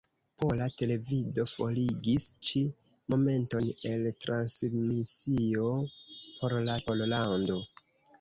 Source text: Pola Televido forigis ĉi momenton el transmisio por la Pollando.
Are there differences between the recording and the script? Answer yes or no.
no